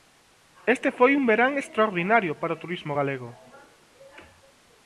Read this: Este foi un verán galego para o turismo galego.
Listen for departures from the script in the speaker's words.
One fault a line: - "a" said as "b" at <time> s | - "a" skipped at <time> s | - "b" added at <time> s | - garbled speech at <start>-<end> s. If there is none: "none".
- "galego" said as "extraordinario" at 1.6 s